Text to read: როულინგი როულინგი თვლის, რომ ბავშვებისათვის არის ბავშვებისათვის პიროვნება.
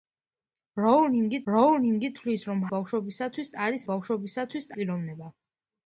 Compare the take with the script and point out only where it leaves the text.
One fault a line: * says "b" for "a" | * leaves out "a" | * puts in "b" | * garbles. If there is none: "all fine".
all fine